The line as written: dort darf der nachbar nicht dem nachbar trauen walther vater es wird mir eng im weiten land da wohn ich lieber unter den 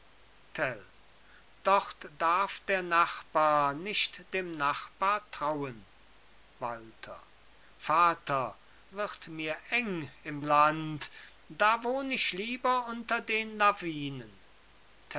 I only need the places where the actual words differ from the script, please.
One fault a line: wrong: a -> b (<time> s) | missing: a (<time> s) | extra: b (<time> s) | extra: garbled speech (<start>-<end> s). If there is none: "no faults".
missing: es (8.6 s)
missing: weiten (10.4 s)